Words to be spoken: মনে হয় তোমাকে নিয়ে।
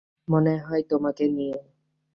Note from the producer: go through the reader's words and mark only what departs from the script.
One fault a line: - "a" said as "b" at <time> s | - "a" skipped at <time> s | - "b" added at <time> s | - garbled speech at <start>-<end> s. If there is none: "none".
none